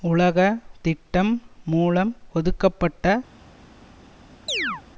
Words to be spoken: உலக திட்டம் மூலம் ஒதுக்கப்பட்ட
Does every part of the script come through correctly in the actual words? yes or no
yes